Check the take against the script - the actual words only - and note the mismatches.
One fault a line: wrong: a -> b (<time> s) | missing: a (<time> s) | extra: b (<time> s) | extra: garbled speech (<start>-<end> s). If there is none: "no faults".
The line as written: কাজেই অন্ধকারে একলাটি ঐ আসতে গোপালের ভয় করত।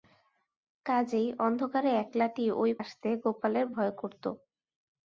no faults